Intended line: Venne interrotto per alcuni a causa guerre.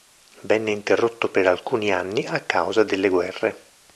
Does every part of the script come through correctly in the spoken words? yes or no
no